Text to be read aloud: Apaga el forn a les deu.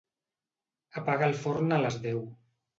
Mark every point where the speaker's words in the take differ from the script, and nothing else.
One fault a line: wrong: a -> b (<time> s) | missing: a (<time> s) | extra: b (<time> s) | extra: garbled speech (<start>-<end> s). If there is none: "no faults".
no faults